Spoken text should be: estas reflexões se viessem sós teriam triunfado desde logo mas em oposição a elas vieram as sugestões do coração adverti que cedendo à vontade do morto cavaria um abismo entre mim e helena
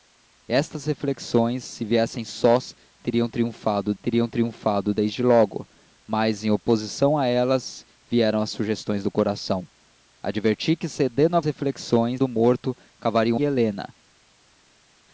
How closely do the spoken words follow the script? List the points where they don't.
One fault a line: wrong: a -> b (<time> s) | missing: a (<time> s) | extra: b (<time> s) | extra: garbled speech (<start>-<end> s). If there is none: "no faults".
extra: teriam triunfado (4.0 s)
wrong: vontade -> reflexões (11.4 s)
missing: abismo entre mim (13.4 s)